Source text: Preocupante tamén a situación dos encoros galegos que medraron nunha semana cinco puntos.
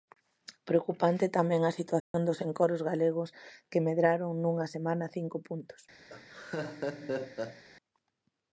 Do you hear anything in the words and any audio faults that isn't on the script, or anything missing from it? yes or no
yes